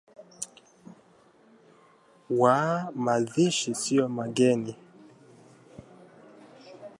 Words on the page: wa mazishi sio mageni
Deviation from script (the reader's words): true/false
false